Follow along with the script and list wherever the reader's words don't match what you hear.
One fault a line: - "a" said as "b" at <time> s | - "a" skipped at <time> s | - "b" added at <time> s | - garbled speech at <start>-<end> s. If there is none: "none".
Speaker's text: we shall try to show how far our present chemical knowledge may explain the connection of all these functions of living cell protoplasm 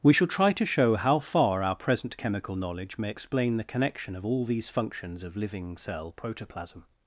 none